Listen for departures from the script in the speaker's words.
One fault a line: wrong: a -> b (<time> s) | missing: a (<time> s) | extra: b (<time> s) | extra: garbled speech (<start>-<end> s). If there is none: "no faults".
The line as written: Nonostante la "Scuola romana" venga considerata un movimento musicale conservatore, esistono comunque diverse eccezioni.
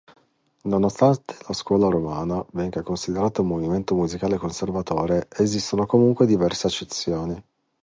no faults